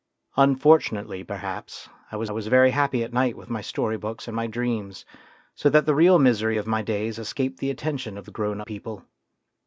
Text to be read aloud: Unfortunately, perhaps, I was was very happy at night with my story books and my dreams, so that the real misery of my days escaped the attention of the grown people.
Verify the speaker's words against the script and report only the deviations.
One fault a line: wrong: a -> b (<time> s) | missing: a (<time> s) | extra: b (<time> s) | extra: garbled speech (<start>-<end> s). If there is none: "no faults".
no faults